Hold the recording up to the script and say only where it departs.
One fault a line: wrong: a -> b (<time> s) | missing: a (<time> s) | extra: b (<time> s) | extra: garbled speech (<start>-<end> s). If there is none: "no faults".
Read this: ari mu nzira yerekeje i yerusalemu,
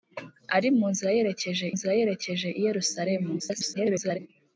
extra: nzira yerekeje (1.7 s)
extra: garbled speech (3.4-4.2 s)